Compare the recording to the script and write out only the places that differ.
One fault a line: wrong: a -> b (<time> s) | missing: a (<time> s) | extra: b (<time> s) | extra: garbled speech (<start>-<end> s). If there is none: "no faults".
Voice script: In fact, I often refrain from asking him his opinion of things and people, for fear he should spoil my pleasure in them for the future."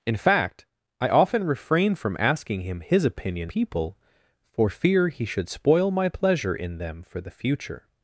missing: of things and (3.5 s)